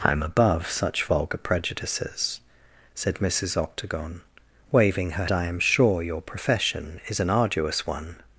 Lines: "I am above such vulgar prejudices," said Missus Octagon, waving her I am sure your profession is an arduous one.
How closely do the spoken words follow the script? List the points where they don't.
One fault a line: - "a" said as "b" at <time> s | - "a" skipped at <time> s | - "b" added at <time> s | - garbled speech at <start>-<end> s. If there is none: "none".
none